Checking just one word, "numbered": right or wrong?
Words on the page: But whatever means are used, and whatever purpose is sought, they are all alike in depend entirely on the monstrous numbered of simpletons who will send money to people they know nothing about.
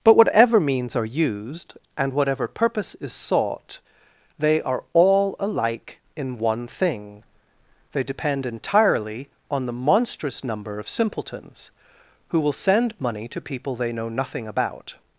wrong